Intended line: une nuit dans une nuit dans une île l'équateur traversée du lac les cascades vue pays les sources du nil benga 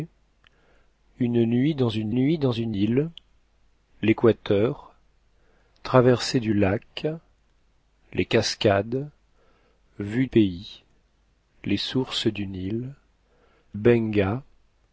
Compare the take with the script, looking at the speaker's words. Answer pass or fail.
pass